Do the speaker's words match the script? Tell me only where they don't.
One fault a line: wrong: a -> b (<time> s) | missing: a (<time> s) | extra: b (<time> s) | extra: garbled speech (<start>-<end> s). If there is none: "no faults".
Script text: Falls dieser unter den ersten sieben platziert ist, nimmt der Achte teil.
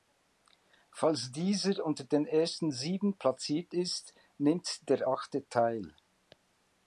no faults